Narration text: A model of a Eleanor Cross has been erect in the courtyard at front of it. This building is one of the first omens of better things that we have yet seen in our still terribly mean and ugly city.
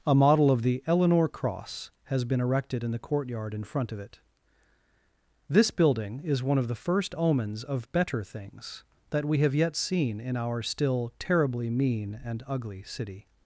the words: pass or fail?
fail